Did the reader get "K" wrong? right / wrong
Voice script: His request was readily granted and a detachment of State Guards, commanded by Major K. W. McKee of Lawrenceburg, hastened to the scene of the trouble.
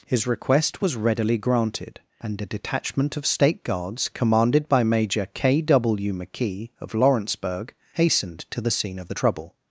right